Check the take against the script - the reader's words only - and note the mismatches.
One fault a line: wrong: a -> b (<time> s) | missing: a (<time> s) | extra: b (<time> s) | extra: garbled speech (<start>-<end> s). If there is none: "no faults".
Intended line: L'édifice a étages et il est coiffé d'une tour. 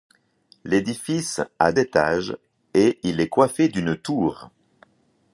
no faults